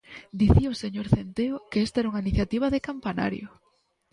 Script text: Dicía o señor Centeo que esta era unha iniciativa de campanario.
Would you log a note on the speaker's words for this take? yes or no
no